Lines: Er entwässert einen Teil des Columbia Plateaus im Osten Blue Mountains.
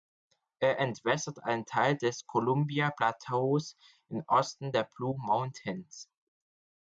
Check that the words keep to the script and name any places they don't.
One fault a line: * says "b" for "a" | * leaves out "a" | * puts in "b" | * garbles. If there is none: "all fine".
* puts in "der"